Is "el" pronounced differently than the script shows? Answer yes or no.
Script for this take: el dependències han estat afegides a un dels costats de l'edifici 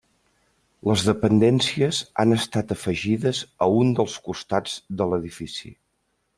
yes